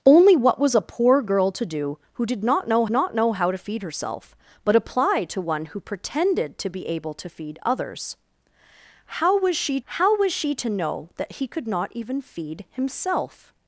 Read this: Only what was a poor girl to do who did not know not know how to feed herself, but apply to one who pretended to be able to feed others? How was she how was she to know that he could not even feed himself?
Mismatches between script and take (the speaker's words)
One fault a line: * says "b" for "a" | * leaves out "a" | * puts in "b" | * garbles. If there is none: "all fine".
all fine